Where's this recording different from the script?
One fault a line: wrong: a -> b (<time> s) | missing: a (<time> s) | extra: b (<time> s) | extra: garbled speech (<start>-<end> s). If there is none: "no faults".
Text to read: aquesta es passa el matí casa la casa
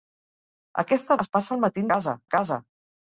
no faults